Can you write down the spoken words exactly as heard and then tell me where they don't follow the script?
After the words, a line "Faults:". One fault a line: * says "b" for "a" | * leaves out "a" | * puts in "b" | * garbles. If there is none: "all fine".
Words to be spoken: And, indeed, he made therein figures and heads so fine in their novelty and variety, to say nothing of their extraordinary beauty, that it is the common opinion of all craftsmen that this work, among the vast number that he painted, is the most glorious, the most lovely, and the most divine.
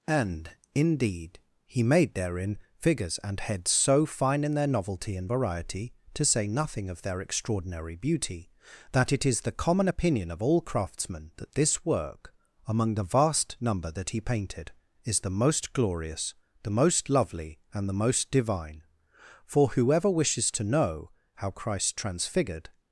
And, indeed, he made therein figures and heads so fine in their novelty and variety, to say nothing of their extraordinary beauty, that it is the common opinion of all craftsmen that this work, among the vast number that he painted, is the most glorious, the most lovely, and the most divine. For whoever wishes to know how Christ Transfigured
Faults:
* puts in "For whoever wishes to know how Christ Transfigured"